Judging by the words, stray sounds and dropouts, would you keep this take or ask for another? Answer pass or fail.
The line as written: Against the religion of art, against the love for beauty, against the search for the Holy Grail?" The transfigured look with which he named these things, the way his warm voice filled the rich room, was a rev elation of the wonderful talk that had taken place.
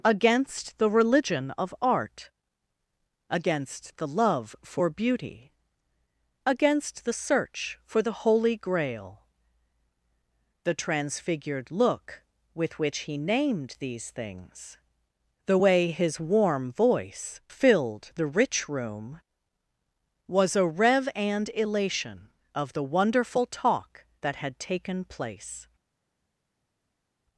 fail